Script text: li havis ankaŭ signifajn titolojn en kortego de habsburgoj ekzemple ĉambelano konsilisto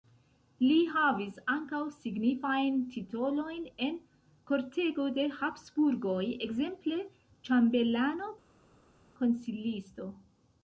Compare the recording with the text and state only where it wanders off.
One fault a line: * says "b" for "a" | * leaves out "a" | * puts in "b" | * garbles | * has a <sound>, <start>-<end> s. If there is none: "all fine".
all fine